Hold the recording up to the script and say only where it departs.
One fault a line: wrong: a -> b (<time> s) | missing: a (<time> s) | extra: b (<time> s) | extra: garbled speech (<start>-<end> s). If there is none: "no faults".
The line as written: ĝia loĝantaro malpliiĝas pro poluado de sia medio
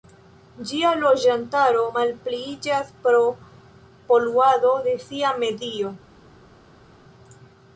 no faults